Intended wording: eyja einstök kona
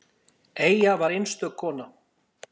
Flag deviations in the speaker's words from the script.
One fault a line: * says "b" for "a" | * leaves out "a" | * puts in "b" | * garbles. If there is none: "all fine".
* puts in "var"